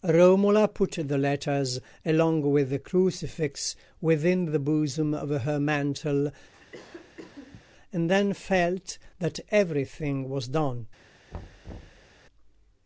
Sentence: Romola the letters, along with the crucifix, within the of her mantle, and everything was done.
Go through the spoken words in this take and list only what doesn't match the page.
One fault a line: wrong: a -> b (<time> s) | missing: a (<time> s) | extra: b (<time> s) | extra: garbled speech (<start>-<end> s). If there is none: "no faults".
extra: put (0.7 s)
extra: bosom (4.6 s)
extra: then felt that (8.1 s)